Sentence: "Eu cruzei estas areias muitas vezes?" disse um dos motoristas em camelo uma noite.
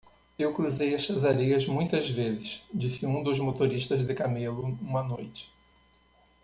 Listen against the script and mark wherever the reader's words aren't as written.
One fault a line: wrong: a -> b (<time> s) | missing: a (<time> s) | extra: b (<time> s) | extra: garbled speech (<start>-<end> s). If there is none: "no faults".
wrong: em -> de (4.0 s)